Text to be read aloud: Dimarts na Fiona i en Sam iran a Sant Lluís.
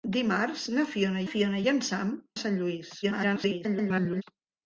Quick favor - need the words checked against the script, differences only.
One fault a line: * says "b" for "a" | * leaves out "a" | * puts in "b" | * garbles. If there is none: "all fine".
* puts in "Fiona"
* leaves out "iran"
* garbles